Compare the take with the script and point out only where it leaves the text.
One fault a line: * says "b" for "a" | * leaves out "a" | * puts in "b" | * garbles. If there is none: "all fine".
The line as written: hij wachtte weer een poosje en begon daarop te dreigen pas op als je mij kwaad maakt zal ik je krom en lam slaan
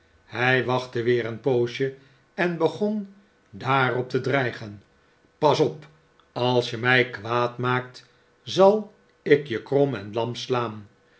all fine